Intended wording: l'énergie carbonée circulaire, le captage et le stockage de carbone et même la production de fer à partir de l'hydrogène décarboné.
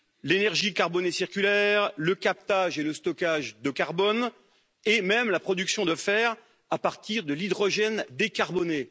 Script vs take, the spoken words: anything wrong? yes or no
no